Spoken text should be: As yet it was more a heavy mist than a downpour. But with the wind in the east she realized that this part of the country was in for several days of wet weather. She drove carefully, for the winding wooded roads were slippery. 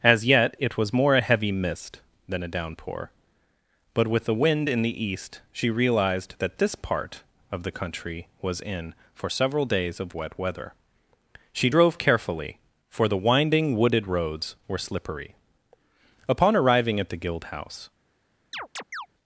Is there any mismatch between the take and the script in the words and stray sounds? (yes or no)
yes